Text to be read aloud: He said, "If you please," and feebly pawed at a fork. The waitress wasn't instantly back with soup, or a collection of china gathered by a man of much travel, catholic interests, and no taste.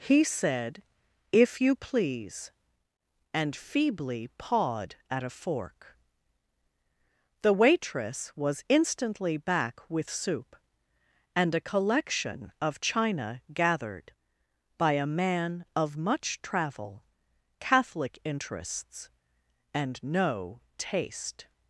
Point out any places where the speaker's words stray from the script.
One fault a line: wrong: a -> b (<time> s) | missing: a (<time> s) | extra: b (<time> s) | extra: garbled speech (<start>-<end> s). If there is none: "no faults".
wrong: wasn't -> was (8.3 s)
wrong: or -> and (11.3 s)